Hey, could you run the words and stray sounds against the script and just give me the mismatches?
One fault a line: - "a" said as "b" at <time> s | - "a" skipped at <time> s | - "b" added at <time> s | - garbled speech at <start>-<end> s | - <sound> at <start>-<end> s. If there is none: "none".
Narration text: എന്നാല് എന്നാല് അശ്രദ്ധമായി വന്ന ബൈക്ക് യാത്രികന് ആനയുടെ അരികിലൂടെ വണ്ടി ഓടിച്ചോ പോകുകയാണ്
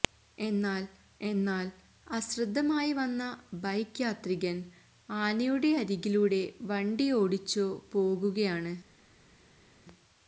none